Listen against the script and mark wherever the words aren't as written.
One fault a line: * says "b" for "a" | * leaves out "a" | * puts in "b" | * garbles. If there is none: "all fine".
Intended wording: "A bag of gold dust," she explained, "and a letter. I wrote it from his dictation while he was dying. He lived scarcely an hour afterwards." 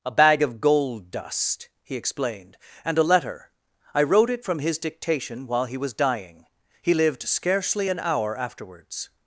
* says "he" for "she"